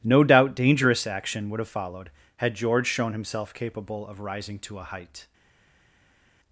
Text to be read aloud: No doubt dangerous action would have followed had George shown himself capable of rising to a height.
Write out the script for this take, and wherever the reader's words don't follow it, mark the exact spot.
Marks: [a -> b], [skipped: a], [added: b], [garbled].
No doubt dangerous action would have followed had George shown himself capable of rising to a height.